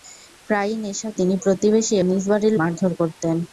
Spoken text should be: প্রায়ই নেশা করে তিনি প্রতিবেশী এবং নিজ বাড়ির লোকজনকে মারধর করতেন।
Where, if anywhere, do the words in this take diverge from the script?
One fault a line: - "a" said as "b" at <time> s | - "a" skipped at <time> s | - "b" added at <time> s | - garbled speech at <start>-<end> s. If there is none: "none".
- "করে" skipped at 1.1 s
- "এবং" skipped at 1.9 s
- "লোকজনকে" skipped at 2.5 s